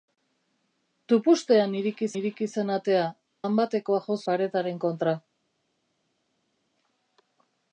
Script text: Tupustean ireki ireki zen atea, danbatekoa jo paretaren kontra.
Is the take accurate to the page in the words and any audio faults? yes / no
yes